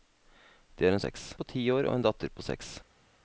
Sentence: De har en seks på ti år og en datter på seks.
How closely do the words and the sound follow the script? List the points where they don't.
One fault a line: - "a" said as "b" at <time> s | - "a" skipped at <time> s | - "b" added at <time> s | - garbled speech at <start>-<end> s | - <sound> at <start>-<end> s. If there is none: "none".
none